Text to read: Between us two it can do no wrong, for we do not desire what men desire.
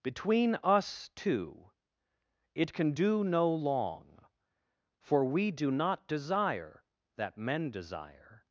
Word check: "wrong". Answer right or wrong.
wrong